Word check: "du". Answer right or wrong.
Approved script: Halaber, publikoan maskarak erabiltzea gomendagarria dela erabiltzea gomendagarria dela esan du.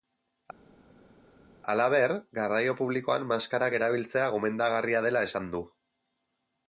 right